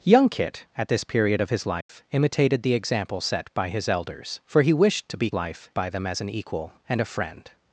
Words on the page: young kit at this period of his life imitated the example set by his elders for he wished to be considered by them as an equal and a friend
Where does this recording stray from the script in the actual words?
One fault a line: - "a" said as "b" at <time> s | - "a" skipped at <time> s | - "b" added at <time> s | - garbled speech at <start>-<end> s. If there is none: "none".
- "considered" said as "life" at 5.3 s